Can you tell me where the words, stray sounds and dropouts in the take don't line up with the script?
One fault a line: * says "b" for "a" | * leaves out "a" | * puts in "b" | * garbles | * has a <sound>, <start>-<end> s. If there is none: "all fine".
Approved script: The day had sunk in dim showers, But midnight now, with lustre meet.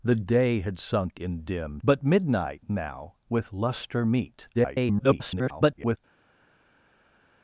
* leaves out "showers"
* garbles